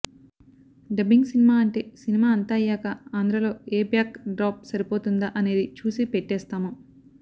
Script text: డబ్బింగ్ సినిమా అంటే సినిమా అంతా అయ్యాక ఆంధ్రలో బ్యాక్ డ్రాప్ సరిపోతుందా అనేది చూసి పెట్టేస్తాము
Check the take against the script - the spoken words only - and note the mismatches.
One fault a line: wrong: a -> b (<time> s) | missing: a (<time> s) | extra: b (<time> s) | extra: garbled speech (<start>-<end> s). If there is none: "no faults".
extra: ఏ (3.7 s)